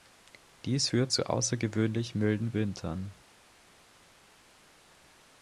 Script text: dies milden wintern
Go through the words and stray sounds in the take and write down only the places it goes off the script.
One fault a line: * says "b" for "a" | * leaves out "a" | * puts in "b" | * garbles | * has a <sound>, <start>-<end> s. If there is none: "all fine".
* puts in "führt zu außergewöhnlich"